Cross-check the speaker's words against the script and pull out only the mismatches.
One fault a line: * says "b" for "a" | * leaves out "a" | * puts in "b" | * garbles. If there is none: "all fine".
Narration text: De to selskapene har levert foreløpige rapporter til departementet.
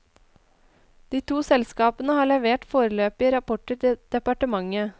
all fine